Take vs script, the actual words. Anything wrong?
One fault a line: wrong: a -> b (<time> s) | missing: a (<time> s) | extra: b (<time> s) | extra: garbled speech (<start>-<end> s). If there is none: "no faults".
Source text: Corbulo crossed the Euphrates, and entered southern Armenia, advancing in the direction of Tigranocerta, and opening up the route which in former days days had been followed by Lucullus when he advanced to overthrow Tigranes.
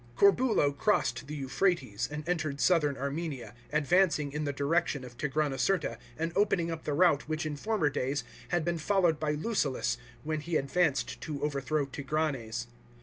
missing: days (8.2 s)